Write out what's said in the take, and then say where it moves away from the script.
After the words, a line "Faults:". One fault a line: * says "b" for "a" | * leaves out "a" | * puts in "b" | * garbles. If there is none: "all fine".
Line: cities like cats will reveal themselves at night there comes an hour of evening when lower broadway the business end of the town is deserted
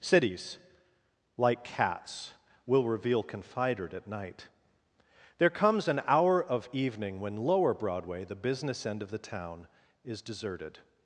cities like cats will reveal confidered at night there comes an hour of evening when lower broadway the business end of the town is deserted
Faults:
* says "confidered" for "themselves"